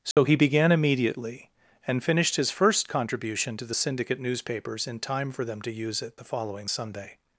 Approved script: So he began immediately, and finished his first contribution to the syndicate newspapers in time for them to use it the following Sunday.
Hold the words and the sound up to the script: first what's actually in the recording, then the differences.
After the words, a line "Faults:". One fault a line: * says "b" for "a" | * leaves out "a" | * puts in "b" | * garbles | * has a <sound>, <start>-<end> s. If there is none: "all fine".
So he began immediately, and finished his first contribution to the syndicate newspapers in time for them to use it the following Sunday.
Faults:
* has a dropout, 0.1-0.2 s